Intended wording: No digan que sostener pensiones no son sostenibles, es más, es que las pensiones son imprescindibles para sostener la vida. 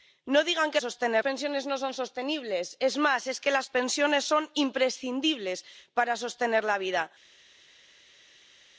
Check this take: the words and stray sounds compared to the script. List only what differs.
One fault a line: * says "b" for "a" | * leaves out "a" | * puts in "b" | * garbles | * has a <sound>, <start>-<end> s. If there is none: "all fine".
all fine